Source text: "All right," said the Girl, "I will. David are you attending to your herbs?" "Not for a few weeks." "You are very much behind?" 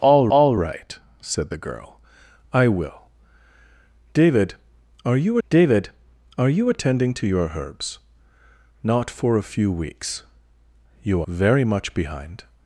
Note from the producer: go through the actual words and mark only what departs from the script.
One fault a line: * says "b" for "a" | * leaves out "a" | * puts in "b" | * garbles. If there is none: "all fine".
* puts in "all"
* puts in "david are you"
* leaves out "are"